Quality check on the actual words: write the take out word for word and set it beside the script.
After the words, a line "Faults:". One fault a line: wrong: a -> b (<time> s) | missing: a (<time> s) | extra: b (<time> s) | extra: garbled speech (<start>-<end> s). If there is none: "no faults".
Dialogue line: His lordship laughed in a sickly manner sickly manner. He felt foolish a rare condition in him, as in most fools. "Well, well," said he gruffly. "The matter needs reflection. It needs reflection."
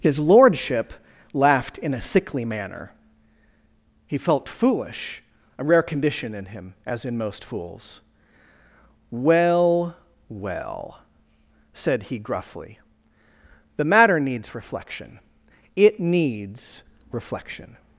His lordship laughed in a sickly manner. He felt foolish a rare condition in him, as in most fools. "Well, well," said he gruffly. "The matter needs reflection. It needs reflection."
Faults:
missing: sickly manner (2.9 s)